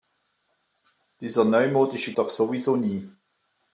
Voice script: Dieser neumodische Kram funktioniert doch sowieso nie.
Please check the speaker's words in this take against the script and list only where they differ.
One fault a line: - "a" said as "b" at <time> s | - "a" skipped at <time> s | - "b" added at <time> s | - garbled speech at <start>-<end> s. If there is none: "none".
- "Kram funktioniert" skipped at 2.1 s